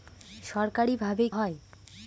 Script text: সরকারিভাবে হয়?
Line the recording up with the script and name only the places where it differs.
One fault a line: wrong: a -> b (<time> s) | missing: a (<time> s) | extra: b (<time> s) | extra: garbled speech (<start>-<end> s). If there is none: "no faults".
no faults